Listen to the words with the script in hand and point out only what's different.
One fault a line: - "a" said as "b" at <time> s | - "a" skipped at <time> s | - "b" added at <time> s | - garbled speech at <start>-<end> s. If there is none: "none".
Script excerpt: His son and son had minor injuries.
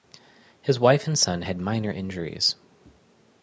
- "son" said as "wife" at 0.8 s